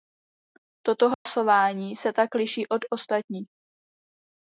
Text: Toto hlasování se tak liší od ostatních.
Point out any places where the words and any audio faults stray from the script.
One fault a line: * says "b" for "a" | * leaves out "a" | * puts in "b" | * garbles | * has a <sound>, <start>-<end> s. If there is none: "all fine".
* has a dropout, 1.1-1.3 s